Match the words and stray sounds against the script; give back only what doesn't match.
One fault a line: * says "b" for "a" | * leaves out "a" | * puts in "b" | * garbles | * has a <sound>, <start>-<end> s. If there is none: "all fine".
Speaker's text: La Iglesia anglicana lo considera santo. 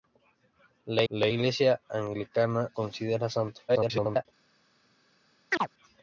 * puts in "la"
* leaves out "lo"
* garbles
* has a chirp, 5.5-5.7 s